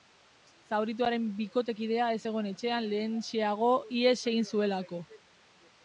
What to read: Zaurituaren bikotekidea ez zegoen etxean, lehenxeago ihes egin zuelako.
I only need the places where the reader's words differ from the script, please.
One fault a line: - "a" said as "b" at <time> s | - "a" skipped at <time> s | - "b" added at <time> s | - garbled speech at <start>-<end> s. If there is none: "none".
none